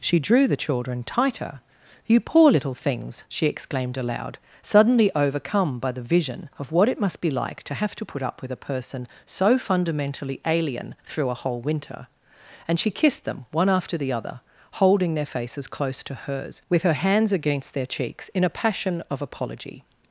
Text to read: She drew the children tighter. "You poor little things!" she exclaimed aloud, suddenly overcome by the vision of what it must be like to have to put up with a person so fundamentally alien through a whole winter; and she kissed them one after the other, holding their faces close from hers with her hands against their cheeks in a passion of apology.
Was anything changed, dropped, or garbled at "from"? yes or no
yes